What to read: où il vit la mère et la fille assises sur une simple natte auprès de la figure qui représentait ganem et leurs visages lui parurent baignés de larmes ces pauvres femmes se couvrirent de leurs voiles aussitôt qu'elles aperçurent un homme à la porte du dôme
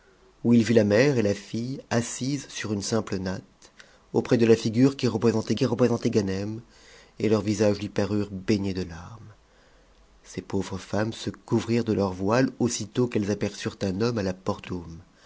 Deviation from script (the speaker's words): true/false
true